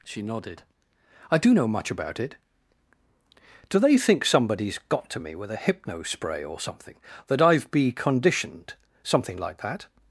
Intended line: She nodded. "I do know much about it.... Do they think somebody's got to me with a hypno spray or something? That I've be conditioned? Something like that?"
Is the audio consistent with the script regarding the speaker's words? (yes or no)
yes